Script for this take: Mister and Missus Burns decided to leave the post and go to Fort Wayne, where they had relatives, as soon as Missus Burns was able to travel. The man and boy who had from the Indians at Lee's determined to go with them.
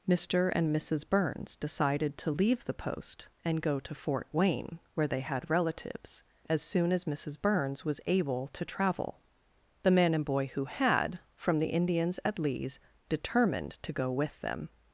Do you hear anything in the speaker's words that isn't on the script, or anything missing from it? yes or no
no